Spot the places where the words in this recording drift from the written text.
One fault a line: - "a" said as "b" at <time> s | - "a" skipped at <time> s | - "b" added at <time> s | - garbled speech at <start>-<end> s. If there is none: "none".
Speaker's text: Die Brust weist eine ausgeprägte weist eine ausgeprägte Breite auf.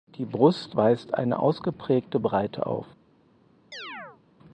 - "weist eine ausgeprägte" skipped at 2.2 s